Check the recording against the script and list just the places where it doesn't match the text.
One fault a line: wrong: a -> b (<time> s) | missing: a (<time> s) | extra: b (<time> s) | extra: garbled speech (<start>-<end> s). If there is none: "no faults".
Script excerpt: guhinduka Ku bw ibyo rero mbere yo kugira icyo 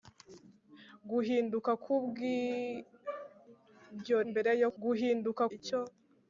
missing: rero (4.2 s)
wrong: kugira -> guhinduka (4.8 s)